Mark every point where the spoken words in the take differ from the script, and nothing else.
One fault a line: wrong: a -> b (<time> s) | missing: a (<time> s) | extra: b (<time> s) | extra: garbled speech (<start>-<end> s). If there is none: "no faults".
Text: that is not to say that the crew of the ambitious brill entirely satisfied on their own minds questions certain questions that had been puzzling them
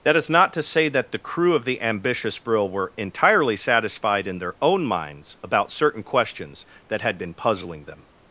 extra: were (2.7 s)
wrong: on -> in (4.3 s)
wrong: questions -> about (5.4 s)